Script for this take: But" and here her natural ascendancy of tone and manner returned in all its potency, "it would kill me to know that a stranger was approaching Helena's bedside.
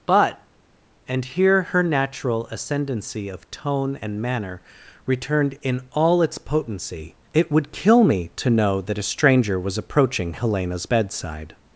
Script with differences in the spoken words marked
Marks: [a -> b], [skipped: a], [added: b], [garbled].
But" and here her natural ascendancy of tone and manner returned in all its potency, "it would kill me to know that a stranger was approaching Helena's bedside.